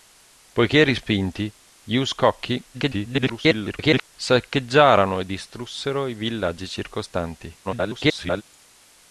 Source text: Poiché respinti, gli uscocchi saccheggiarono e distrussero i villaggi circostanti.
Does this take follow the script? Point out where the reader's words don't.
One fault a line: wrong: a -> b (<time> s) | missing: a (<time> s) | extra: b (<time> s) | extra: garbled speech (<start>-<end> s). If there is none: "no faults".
extra: garbled speech (2.7-4.1 s)
extra: garbled speech (7.6-8.4 s)